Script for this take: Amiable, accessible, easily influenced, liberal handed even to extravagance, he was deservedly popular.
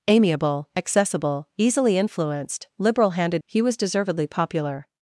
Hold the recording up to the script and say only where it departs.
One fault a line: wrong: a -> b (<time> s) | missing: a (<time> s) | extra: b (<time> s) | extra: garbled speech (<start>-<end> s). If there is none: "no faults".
missing: even to extravagance (3.4 s)